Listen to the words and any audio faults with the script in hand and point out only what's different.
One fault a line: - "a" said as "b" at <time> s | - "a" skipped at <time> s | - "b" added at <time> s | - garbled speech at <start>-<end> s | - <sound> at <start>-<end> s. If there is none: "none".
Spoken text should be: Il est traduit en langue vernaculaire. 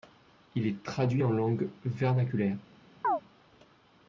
- chirp at 3.0-3.2 s